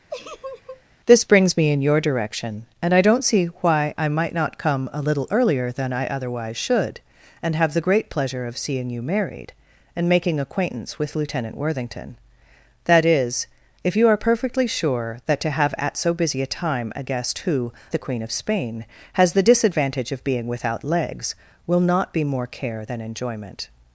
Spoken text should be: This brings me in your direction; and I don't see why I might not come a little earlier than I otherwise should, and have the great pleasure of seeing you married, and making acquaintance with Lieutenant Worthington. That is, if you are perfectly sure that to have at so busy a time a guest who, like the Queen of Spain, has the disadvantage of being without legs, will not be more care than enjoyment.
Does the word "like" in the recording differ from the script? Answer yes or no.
yes